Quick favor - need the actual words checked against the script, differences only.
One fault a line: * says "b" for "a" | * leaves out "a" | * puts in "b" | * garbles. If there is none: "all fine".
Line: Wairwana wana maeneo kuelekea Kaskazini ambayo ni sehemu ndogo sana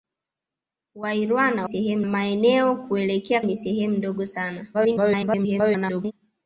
* says "sehemu" for "wana"
* leaves out "Kaskazini ambayo"
* garbles